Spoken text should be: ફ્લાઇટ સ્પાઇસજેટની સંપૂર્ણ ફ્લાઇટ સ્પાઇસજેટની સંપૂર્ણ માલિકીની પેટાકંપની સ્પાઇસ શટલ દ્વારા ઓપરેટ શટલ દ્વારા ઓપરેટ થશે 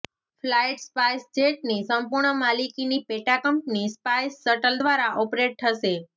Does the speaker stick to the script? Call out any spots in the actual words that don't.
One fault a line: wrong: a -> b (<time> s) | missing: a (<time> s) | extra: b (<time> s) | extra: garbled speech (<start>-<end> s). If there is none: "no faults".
missing: ફ્લાઇટ સ્પાઇસજેટની સંપૂર્ણ (2.4 s)
missing: શટલ દ્વારા ઓપરેટ (5.6 s)